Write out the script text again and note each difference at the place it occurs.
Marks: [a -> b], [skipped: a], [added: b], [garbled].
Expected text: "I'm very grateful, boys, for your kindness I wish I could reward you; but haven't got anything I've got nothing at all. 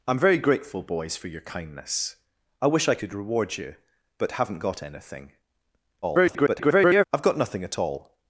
"I'm very grateful, boys, for your kindness I wish I could reward you; but haven't got anything [garbled] I've got nothing at all.